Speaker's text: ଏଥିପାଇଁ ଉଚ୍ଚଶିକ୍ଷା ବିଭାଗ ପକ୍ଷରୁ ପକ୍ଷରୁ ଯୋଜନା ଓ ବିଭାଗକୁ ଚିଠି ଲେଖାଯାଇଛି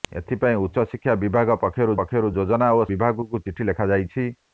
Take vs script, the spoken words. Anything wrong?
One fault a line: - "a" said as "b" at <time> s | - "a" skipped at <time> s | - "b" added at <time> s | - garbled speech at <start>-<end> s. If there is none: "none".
none